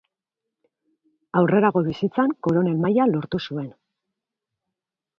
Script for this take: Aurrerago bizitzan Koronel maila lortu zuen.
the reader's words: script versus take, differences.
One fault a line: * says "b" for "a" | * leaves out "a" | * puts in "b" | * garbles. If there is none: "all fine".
all fine